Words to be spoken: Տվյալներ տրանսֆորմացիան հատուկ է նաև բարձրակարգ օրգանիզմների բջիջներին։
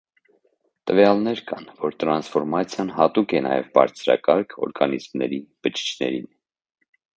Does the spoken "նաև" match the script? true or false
true